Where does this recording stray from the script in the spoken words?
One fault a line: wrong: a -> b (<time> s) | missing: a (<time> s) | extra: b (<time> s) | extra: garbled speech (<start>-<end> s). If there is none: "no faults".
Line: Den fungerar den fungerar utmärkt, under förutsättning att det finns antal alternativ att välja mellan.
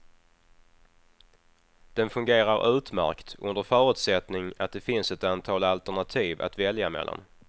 missing: den fungerar (2.8 s)
extra: ett (5.1 s)